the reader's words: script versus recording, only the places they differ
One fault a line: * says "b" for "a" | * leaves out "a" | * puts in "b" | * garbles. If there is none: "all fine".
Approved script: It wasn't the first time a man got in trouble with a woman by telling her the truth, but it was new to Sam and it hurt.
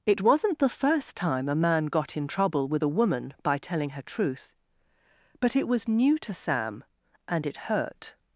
* leaves out "the"